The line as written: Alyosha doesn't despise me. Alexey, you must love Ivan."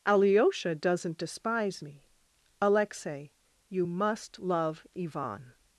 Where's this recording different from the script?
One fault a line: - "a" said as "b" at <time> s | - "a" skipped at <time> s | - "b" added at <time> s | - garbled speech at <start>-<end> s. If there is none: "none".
none